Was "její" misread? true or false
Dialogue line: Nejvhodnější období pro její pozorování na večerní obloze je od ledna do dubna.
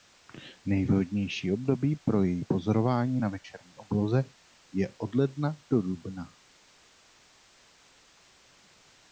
false